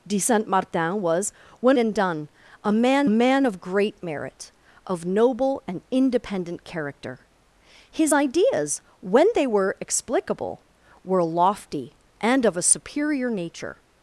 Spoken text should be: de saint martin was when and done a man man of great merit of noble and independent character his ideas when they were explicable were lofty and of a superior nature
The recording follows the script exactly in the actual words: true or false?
true